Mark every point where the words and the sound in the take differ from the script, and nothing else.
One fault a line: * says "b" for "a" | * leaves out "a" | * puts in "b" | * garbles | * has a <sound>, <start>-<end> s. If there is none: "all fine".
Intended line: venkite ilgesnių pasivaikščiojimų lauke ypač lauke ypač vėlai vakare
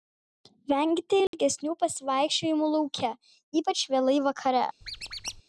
* has a dropout, 1.3-1.3 s
* leaves out "lauke ypač"
* has a squeak, 4.8-5.4 s